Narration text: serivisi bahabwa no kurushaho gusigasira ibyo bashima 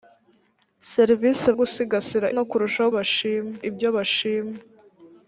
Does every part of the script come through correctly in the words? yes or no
no